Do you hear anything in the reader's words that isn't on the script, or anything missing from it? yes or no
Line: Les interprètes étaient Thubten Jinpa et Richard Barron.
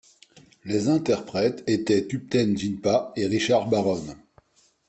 no